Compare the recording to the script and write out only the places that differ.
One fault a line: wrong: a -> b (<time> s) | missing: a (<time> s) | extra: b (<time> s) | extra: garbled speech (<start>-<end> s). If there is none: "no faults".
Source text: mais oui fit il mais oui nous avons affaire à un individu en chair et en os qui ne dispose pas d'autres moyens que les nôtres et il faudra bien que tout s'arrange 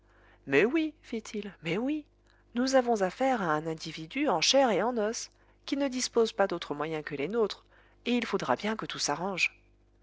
no faults